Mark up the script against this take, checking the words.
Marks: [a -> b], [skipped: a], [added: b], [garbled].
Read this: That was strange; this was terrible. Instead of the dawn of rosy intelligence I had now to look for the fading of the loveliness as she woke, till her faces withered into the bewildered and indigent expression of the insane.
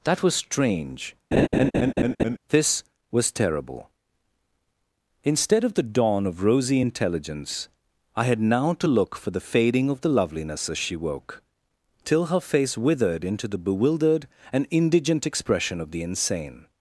That was strange; this was terrible. Instead of the dawn of rosy intelligence I had now to look for the fading of the loveliness as she woke, till her [faces -> face] withered into the bewildered and indigent expression of the insane.